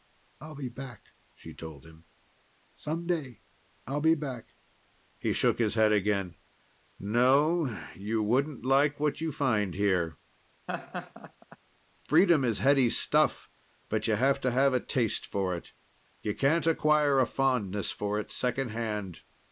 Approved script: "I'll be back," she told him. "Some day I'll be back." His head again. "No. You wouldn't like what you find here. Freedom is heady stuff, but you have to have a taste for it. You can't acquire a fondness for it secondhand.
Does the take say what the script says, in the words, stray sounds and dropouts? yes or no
no